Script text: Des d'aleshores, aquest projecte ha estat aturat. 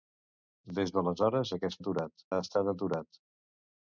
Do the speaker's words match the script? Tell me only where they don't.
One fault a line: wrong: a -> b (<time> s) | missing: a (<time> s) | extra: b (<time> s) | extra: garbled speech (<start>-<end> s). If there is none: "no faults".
wrong: projecte -> aturat (1.8 s)